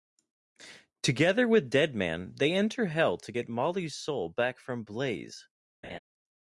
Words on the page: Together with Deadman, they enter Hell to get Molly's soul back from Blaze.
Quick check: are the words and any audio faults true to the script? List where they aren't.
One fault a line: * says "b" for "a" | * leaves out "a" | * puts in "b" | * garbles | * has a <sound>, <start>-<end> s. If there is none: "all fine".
* has a laugh, 5.8-6.0 s